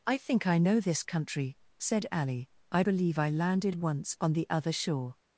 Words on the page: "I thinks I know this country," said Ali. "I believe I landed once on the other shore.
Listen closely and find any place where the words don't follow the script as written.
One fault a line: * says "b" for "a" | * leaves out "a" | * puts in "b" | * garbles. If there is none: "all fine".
* says "think" for "thinks"